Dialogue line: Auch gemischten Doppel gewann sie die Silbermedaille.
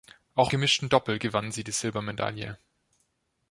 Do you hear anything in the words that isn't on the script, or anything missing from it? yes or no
no